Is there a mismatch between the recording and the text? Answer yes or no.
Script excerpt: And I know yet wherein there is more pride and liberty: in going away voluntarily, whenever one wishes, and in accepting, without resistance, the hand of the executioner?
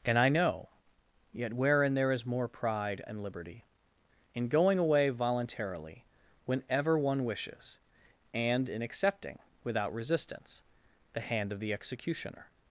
no